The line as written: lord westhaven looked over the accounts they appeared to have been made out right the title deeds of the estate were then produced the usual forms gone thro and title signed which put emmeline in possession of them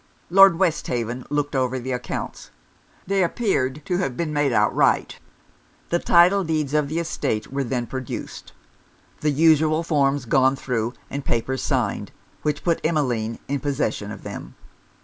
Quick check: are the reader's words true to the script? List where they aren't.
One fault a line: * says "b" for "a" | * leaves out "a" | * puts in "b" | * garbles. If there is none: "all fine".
* says "papers" for "title"